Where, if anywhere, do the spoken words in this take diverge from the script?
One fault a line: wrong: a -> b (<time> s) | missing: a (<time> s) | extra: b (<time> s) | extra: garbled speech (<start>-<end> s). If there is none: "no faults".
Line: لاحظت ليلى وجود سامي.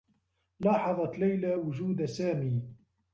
no faults